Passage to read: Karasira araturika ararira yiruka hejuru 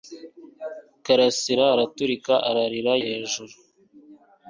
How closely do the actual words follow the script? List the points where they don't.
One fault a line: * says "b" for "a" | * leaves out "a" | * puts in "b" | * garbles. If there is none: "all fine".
* leaves out "yiruka"